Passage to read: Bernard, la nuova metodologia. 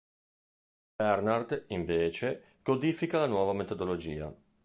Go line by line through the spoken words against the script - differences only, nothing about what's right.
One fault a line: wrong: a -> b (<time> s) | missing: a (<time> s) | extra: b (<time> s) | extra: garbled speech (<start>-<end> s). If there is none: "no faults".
extra: invece codifica (1.7 s)